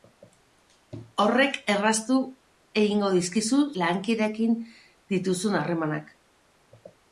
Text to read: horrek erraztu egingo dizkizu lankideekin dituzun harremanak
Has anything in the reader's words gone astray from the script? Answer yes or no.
no